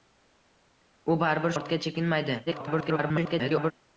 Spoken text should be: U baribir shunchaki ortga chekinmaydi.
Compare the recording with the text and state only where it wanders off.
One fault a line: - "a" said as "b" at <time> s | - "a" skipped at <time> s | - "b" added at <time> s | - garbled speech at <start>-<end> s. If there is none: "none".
- "shunchaki" skipped at 1.5 s
- garbled speech at 2.5-3.7 s